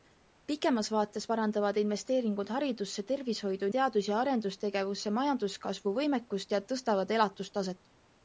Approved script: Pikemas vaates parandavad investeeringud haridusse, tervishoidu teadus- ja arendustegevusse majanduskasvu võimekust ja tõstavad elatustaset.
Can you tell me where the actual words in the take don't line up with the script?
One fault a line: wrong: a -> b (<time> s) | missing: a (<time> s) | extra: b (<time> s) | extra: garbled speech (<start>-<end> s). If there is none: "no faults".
no faults